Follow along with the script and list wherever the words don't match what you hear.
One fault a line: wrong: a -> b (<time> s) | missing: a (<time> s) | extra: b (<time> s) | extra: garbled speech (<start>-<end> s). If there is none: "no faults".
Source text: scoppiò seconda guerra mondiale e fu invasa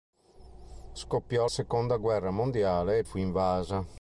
no faults